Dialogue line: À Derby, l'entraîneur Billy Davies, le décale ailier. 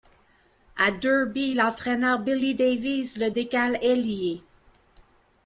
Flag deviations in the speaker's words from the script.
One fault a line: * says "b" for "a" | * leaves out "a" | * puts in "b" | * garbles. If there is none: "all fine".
all fine